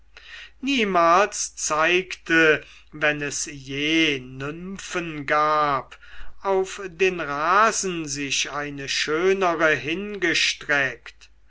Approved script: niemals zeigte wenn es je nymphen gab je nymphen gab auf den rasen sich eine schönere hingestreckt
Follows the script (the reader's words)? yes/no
no